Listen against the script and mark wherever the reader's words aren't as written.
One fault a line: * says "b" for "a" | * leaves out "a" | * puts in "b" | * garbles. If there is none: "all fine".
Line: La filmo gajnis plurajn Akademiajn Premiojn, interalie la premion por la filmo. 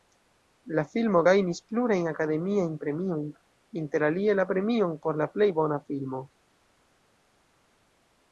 * puts in "plej bona"